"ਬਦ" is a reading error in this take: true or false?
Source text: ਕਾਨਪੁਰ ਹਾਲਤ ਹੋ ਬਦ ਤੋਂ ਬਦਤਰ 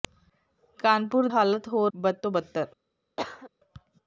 false